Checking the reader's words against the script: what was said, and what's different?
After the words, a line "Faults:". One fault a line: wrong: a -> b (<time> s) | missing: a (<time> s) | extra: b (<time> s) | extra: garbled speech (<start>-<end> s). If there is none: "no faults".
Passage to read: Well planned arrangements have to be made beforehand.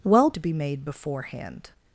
Well to be made beforehand.
Faults:
missing: planned arrangements have (0.3 s)